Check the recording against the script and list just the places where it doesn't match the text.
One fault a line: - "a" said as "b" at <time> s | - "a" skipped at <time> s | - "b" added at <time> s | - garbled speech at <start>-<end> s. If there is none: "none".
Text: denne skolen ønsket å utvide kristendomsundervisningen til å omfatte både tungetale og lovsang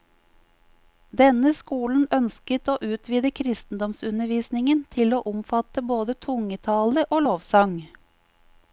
none